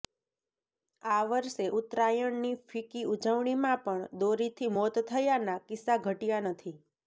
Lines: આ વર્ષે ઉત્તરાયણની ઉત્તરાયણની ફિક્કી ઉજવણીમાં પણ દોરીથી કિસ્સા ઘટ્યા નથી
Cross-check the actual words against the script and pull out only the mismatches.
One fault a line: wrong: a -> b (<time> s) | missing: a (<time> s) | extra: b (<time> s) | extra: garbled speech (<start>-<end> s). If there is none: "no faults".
missing: ઉત્તરાયણની (2.5 s)
extra: મોત થયાના (4.8 s)